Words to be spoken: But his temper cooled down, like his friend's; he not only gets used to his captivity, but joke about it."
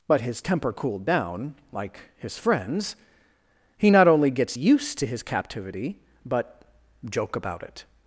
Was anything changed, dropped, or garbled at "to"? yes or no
no